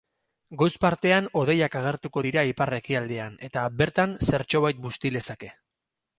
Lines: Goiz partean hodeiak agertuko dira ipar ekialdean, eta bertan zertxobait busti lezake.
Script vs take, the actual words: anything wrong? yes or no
no